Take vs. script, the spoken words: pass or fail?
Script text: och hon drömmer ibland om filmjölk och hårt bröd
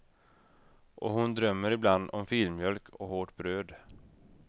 pass